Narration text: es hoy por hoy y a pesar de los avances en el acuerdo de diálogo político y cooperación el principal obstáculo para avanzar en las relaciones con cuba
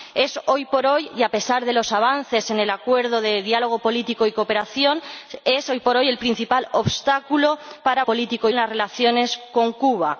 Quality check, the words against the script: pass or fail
fail